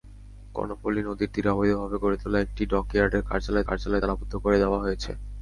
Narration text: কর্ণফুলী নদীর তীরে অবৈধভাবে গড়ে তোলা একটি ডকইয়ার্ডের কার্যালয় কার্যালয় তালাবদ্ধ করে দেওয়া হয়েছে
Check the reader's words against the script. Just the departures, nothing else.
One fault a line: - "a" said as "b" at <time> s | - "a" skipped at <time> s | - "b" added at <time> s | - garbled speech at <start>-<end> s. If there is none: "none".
none